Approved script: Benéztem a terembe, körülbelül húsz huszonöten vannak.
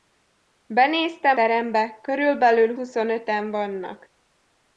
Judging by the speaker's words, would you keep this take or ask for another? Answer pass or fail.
fail